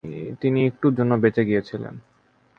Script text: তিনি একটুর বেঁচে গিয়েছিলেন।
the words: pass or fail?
fail